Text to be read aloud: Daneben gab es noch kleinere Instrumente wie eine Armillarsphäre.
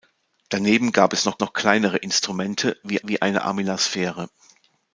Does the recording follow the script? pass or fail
fail